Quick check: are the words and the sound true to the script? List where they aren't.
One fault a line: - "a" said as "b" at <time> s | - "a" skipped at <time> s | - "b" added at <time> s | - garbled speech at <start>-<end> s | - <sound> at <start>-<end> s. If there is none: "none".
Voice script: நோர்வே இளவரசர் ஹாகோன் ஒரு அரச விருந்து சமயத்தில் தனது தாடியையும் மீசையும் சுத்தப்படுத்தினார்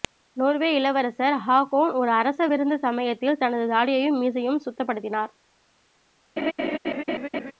- laugh at 6.4-7.5 s